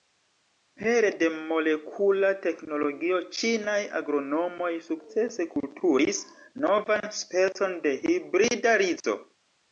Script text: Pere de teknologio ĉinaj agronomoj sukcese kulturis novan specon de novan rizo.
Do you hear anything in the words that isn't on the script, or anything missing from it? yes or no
yes